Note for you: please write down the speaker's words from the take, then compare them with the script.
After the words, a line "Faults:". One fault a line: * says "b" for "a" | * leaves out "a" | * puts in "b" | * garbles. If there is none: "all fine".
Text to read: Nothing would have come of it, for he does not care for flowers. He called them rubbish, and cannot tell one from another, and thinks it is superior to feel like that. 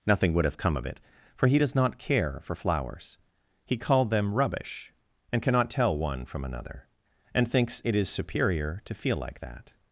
Nothing would have come of it, for he does not care for flowers. He called them rubbish, and cannot tell one from another, and thinks it is superior to feel like that.
Faults:
all fine